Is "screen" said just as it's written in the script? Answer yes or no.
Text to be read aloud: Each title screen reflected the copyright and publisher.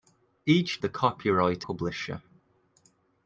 no